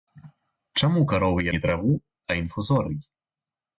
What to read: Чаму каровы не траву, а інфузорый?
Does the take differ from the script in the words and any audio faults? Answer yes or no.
no